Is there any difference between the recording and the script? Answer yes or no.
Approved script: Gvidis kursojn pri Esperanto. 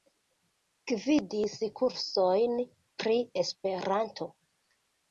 no